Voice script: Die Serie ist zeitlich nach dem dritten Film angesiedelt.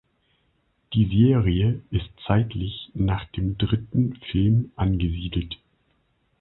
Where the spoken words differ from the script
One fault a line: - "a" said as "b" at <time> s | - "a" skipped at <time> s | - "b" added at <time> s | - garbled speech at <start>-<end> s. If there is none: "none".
none